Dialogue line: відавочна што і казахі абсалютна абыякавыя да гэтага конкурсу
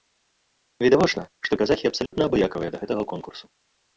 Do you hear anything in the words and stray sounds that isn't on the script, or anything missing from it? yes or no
yes